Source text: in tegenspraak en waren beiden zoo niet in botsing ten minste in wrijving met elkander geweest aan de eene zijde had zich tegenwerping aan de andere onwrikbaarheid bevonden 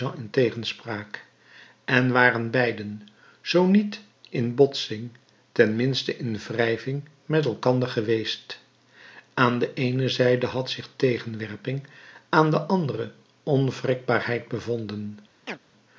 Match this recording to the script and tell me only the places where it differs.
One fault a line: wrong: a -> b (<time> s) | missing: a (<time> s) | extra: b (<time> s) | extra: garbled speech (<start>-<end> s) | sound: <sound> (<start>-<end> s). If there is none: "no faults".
sound: chirp (15.4-15.6 s)